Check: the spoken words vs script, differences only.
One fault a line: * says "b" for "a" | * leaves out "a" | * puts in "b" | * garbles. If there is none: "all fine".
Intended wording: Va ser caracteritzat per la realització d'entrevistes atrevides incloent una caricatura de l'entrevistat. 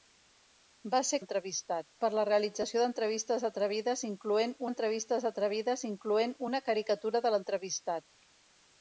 * says "l'entrevistat" for "caracteritzat"
* puts in "d'entrevistes atrevides incloent"